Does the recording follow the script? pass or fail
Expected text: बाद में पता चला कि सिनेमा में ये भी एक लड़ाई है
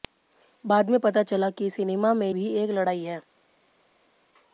fail